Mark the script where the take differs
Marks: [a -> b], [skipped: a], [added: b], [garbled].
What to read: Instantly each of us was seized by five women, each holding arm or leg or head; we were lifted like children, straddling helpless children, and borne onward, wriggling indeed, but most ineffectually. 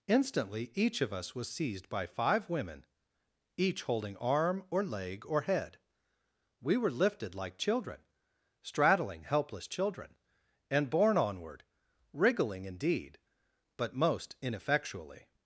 Instantly each of us was seized by five women, each holding arm or leg or head; we were lifted like children, straddling helpless children, and borne onward, wriggling indeed, but most ineffectually.